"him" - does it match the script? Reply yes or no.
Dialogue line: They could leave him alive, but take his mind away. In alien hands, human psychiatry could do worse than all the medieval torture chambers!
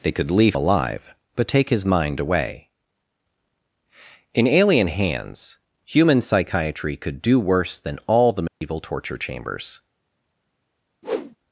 no